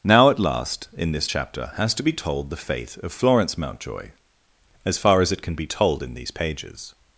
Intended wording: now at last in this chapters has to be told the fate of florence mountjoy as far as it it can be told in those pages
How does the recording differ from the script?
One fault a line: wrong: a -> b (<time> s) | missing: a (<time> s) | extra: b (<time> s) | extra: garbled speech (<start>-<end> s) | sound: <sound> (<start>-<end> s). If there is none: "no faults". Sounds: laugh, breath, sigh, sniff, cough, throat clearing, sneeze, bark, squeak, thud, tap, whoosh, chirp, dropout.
wrong: chapters -> chapter (1.2 s)
missing: it (5.4 s)
wrong: those -> these (6.1 s)